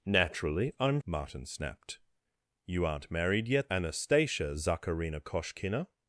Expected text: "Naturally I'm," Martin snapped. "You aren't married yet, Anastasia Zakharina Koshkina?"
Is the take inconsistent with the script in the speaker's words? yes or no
no